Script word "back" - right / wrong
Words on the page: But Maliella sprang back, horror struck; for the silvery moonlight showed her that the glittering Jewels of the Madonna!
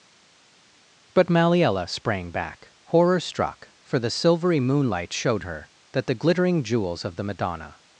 right